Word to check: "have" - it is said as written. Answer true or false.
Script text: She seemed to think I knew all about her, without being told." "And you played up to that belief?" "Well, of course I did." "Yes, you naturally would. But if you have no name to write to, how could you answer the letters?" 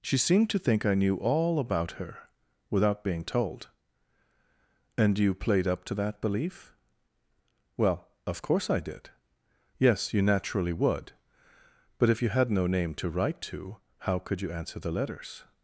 false